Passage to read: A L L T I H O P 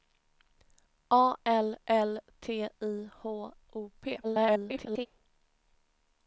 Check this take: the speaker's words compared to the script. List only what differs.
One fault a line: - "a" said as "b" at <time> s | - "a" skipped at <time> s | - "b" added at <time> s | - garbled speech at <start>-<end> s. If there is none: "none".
- garbled speech at 4.2-5.1 s